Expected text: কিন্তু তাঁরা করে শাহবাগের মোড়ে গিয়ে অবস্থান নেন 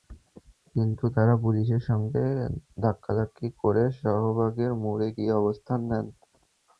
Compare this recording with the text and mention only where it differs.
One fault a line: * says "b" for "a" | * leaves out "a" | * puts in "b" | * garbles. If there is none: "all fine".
* puts in "পুলিশের সঙ্গে ধাক্কাধাক্কি"